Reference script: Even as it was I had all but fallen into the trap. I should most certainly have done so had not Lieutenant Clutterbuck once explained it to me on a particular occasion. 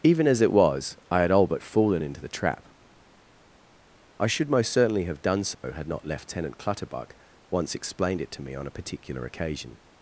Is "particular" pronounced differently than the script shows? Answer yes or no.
no